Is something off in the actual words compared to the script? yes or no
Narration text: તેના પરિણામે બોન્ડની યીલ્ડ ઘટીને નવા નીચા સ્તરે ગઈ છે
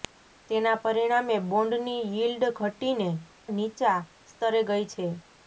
yes